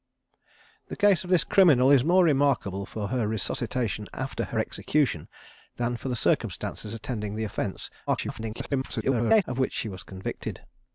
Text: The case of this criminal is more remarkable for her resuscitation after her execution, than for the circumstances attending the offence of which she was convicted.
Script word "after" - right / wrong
right